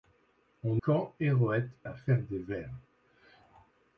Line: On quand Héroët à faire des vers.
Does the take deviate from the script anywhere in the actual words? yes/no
no